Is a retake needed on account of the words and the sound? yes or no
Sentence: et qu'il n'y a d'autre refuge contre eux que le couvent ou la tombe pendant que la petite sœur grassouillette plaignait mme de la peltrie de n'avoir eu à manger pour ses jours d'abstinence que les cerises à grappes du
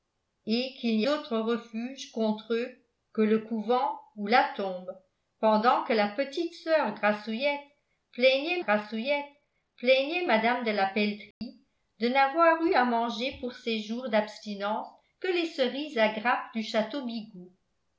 yes